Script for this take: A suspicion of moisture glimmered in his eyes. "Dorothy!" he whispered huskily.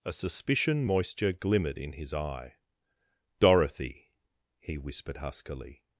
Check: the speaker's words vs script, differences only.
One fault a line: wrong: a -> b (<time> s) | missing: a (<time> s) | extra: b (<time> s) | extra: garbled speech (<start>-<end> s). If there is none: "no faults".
missing: of (0.8 s)
wrong: eyes -> eye (2.1 s)